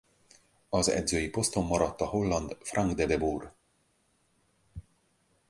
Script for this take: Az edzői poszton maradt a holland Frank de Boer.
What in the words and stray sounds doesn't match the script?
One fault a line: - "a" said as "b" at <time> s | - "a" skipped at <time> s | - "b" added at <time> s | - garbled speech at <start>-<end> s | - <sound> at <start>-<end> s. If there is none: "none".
- "de" added at 3.0 s